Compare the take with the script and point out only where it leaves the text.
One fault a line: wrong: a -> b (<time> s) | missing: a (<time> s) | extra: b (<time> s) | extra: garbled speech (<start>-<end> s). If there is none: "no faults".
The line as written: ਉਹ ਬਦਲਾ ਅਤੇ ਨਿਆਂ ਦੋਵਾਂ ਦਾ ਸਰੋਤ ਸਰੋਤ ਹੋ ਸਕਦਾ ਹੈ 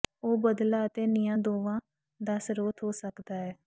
missing: ਸਰੋਤ (2.8 s)